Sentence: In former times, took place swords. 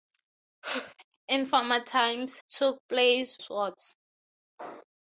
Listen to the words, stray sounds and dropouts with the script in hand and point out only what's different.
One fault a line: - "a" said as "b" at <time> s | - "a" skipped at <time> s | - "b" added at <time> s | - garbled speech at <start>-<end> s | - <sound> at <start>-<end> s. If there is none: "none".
none